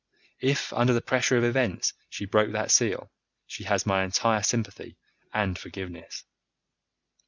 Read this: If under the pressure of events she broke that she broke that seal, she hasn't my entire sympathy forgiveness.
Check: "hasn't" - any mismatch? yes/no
yes